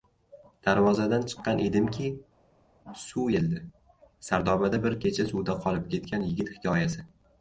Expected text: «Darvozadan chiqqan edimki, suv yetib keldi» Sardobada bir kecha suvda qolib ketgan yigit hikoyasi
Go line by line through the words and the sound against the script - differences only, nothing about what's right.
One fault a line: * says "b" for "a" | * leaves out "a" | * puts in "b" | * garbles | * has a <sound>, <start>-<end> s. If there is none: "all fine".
* leaves out "yetib"